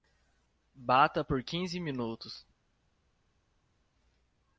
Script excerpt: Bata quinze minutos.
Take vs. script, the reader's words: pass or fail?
fail